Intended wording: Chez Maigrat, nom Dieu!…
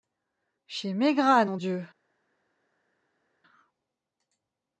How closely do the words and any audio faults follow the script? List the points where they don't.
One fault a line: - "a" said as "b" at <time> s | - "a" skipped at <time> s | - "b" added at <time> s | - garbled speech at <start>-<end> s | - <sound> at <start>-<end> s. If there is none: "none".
none